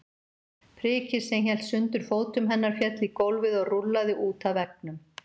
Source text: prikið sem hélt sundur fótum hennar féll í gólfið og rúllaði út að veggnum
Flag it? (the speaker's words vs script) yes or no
no